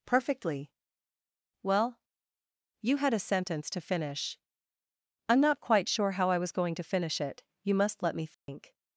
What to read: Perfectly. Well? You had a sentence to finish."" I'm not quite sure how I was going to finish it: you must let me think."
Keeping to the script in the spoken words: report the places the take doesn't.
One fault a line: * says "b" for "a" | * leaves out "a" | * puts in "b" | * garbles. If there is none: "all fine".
all fine